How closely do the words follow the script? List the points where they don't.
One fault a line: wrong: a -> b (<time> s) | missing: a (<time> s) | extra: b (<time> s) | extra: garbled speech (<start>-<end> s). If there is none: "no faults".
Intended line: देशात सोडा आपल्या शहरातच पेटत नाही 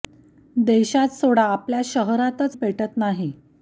no faults